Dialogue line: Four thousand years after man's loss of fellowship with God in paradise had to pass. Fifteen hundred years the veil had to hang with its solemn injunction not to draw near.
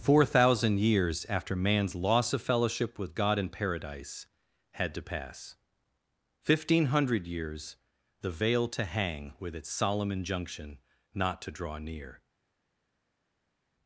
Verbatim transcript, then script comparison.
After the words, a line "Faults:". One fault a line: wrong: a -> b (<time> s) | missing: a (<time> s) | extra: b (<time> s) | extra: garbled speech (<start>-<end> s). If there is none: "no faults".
Four thousand years after man's loss of fellowship with God in paradise had to pass. Fifteen hundred years the veil to hang with its solemn injunction not to draw near.
Faults:
missing: had (8.7 s)